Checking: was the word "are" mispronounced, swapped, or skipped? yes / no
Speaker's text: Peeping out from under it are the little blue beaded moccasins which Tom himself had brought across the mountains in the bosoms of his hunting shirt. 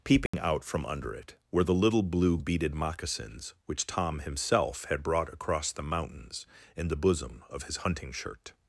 yes